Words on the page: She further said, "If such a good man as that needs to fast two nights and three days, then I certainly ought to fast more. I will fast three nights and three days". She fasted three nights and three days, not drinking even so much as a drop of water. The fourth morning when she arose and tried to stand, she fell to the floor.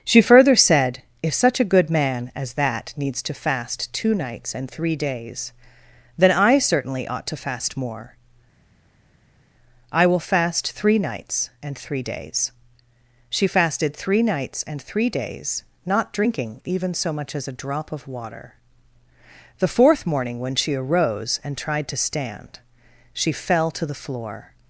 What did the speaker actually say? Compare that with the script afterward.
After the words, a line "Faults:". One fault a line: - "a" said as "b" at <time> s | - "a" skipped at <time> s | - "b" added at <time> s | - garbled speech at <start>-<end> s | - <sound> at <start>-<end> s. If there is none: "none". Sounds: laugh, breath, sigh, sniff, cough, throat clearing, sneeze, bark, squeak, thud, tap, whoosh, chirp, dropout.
She further said, "If such a good man as that needs to fast two nights and three days, then I certainly ought to fast more. I will fast three nights and three days". She fasted three nights and three days, not drinking even so much as a drop of water. The fourth morning when she arose and tried to stand, she fell to the floor.
Faults:
none